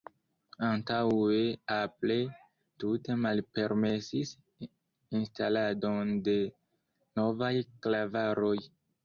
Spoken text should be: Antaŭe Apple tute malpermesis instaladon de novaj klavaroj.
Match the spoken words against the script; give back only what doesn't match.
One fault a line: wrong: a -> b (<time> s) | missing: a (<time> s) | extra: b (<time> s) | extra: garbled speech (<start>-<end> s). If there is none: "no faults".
no faults